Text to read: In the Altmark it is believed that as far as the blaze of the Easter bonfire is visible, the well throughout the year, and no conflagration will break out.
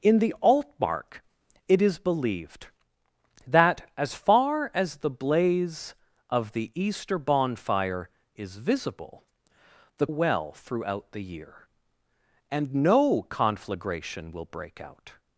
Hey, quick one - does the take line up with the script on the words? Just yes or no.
yes